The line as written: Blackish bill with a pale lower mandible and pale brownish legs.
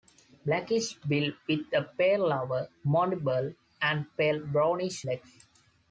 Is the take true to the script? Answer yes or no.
yes